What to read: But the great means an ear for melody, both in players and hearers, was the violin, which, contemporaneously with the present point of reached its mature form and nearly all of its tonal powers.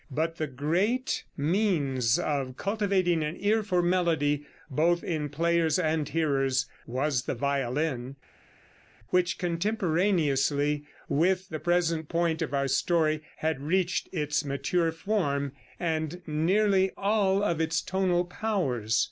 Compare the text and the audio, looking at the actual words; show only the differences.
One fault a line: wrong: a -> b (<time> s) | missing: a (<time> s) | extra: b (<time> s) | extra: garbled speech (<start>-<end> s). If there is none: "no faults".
extra: of cultivating (2.2 s)
extra: our story had (12.5 s)